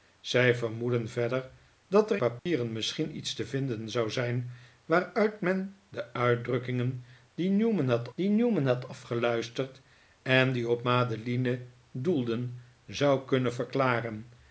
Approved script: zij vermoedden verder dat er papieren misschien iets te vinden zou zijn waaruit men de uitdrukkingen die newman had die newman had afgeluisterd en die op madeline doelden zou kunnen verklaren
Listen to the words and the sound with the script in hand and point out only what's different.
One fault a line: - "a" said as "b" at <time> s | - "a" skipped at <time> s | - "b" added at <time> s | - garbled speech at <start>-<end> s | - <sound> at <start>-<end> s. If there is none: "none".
- dropout at 2.4-2.5 s